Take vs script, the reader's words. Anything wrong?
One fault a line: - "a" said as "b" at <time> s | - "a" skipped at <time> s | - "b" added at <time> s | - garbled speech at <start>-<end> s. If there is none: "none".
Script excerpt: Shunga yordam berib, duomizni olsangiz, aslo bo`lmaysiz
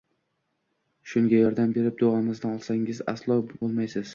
none